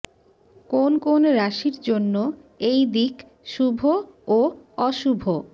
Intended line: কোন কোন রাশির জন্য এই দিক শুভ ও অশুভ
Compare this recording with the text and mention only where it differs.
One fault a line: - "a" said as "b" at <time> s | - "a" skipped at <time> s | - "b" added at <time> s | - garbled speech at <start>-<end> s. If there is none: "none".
none